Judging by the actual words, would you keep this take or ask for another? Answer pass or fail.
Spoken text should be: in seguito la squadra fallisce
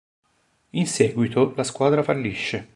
pass